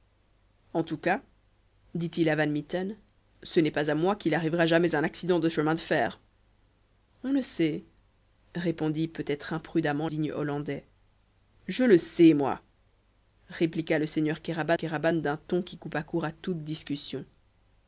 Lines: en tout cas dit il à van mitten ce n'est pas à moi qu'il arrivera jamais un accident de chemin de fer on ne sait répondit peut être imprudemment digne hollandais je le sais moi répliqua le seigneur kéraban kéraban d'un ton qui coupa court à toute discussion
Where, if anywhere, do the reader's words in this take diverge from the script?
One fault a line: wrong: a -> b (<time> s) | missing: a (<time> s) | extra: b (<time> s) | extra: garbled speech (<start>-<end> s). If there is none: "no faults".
no faults